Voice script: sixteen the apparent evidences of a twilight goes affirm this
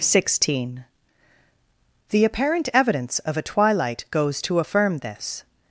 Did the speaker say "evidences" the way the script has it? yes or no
no